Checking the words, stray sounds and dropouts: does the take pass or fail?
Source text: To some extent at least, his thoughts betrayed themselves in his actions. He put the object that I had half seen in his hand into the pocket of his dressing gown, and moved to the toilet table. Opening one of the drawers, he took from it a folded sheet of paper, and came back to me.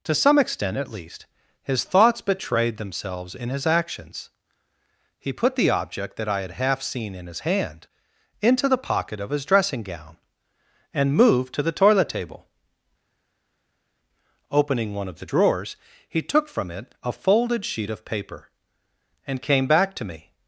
pass